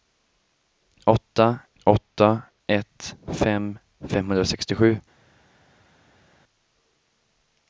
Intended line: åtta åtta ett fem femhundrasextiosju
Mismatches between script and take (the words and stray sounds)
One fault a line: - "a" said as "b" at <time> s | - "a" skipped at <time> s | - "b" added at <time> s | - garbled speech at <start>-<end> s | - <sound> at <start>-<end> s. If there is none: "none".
none